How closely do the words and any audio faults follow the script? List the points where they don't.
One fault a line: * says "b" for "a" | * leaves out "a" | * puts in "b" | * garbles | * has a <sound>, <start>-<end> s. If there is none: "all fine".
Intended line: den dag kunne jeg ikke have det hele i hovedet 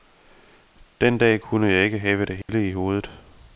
* has a dropout, 2.4-2.5 s